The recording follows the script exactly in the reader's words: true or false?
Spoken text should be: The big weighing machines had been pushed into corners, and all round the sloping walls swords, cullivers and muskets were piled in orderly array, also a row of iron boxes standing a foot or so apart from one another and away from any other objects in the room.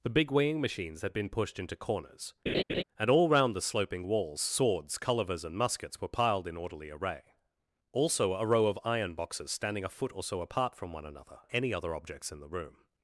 false